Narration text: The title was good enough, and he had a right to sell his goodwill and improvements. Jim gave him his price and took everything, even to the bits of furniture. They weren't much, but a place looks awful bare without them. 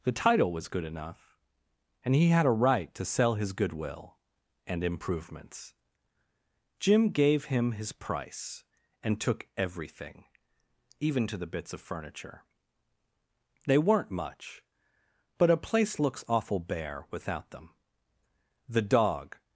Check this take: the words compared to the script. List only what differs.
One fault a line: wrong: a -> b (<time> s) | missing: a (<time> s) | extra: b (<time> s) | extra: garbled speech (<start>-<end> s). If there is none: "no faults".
extra: The dog (18.7 s)